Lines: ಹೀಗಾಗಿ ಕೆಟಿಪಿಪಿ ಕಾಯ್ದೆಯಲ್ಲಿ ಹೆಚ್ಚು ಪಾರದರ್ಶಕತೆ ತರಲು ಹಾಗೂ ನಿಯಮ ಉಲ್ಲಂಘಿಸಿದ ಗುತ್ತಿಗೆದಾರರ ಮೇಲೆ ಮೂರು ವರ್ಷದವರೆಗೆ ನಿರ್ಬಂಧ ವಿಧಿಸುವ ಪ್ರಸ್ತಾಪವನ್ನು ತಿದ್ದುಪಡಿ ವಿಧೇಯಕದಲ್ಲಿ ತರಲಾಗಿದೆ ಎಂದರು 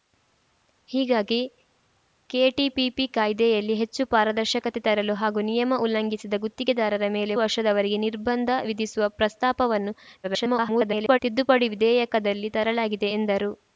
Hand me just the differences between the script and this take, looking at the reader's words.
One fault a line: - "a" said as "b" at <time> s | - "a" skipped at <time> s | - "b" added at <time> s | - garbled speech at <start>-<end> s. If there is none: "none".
- "ಮೂರು" skipped at 7.3 s
- garbled speech at 10.2-11.2 s